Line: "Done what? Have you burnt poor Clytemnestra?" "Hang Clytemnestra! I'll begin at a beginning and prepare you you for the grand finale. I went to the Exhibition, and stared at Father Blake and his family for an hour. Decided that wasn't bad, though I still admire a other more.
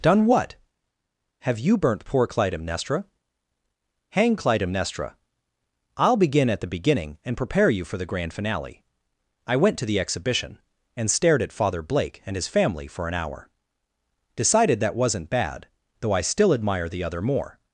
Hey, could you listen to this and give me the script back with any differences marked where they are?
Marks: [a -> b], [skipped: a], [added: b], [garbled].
"Done what? Have you burnt poor Clytemnestra?" "Hang Clytemnestra! I'll begin at [a -> the] beginning and prepare you [skipped: you] for the grand finale. I went to the Exhibition, and stared at Father Blake and his family for an hour. Decided that wasn't bad, though I still admire [a -> the] other more.